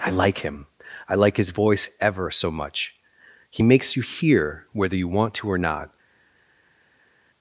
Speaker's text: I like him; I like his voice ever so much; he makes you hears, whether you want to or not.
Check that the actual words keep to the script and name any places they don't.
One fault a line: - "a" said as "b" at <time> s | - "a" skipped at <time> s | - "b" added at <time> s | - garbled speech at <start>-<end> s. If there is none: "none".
- "hears" said as "hear" at 4.0 s